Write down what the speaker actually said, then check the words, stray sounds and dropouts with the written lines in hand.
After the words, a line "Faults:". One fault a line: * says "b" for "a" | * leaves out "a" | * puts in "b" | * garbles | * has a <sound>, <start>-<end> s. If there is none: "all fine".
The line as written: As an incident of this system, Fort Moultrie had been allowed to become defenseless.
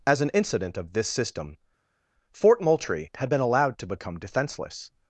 As an incident of this system, Fort Moultrie had been allowed to become defenseless.
Faults:
all fine